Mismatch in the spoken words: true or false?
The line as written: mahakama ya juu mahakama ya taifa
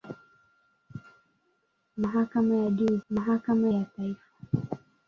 false